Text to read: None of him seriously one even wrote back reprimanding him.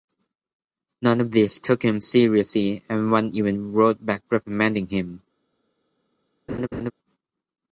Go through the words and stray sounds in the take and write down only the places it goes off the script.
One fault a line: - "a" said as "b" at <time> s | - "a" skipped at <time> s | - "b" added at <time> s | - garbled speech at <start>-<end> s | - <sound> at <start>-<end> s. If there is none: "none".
- "these took" added at 1.3 s
- "and" added at 2.9 s
- laugh at 6.5-6.9 s